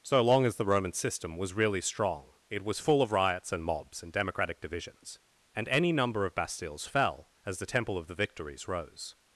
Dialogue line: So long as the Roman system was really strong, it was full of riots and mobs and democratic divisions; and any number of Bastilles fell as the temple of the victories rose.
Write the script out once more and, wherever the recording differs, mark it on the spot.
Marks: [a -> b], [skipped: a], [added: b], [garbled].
So long as the Roman system was really strong, it was full of riots and mobs and democratic divisions; and any number of Bastilles fell as the temple of the victories rose.